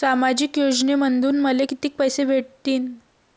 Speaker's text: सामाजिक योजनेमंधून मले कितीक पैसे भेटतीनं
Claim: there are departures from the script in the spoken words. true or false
false